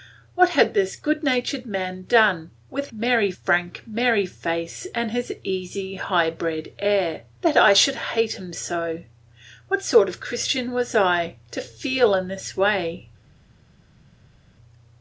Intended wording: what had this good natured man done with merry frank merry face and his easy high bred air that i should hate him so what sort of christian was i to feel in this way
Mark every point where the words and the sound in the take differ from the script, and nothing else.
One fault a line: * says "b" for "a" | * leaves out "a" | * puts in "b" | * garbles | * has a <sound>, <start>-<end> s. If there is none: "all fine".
all fine